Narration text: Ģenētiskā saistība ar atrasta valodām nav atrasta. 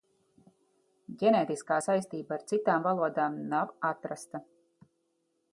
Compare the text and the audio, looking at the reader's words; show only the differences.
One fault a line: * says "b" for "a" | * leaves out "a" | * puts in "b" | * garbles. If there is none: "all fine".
* says "citām" for "atrasta"